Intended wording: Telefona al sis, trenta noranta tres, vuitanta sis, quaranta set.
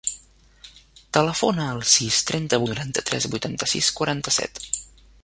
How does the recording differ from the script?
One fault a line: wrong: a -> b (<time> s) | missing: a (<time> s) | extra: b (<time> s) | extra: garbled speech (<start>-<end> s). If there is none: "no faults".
no faults